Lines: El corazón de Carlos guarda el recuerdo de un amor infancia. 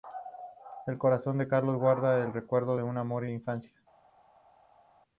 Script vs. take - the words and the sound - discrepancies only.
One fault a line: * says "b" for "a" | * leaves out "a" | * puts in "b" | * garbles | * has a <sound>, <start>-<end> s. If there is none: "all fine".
all fine